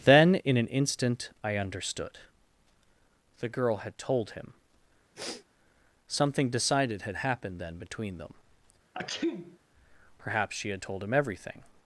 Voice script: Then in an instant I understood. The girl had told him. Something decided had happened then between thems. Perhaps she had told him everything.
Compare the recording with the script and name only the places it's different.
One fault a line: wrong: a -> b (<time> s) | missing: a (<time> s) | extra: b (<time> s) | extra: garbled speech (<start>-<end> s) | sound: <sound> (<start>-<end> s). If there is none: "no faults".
sound: sniff (5.2-5.5 s)
wrong: thems -> them (8.2 s)
sound: sneeze (8.9-9.6 s)